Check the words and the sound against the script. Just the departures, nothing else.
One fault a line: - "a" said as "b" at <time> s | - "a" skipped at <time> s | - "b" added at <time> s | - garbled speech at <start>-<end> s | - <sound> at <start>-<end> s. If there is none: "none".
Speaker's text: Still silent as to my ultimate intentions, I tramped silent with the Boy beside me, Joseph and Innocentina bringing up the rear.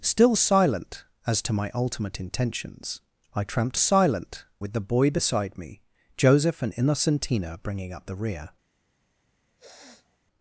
- sniff at 9.6-10.2 s